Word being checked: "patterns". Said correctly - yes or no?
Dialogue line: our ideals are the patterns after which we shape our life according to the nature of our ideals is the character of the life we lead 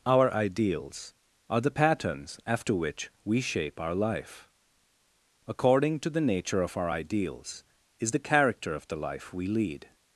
yes